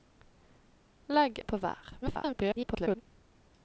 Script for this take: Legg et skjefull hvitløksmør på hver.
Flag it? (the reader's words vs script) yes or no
yes